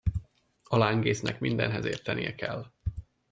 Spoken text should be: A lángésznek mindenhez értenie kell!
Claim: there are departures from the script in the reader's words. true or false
false